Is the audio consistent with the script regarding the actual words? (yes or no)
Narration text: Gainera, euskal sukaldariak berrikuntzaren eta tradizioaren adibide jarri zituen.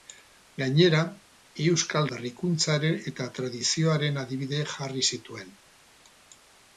no